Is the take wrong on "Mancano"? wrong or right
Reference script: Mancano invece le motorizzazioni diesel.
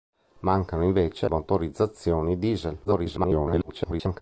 right